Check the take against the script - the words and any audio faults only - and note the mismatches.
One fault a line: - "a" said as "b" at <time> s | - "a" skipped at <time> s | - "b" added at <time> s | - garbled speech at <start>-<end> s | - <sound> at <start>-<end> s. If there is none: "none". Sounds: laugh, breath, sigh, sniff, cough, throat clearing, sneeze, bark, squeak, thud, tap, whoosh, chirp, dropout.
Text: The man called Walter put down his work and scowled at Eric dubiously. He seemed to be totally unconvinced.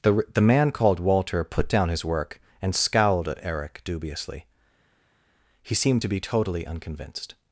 - "the" added at 0.3 s